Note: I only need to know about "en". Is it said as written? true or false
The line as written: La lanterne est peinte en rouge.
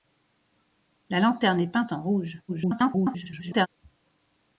true